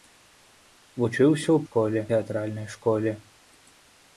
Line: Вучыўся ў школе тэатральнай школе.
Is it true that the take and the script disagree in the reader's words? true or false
false